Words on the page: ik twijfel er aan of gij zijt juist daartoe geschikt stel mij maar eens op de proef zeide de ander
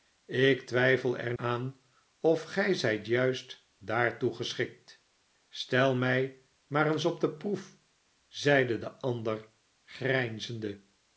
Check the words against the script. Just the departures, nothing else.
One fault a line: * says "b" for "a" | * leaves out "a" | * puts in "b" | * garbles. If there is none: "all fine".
all fine